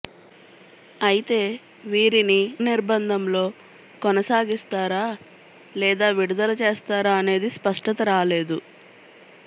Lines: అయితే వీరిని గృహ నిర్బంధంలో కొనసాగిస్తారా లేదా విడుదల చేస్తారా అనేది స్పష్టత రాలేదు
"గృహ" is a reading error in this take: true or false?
true